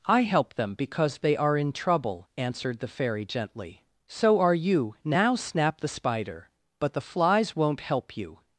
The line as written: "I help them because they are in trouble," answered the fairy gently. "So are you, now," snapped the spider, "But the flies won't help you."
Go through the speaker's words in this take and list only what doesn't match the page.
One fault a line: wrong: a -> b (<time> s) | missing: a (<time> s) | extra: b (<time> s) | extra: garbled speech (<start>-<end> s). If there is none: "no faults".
no faults